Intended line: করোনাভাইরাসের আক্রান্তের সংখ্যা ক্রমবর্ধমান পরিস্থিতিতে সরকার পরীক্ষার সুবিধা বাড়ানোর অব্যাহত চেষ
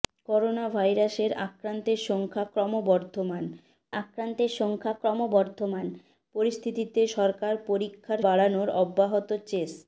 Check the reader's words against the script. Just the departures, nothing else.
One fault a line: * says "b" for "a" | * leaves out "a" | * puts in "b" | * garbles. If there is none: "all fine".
* puts in "আক্রান্তের সংখ্যা ক্রমবর্ধমান"
* leaves out "সুবিধা"